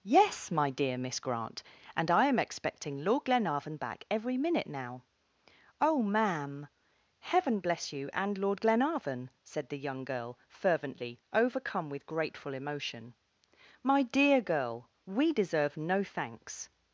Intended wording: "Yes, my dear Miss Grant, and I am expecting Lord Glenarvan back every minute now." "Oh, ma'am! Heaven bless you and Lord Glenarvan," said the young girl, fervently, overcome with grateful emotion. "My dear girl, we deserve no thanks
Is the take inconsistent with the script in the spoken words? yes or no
no